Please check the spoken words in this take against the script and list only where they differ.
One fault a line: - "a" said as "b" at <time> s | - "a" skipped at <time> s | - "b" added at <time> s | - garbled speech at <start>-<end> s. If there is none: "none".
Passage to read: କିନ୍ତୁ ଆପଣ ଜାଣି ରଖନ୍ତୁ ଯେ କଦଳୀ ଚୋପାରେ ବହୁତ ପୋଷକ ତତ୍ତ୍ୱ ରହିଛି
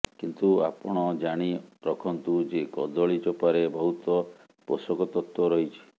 none